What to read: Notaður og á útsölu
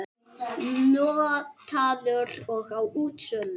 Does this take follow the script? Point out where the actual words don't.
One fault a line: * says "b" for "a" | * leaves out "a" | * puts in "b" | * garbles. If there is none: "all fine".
all fine